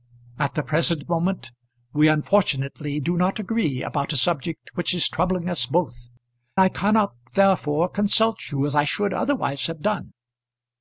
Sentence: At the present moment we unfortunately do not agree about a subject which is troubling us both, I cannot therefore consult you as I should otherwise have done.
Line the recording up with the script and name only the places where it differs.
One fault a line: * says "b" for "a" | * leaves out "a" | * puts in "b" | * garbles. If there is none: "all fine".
all fine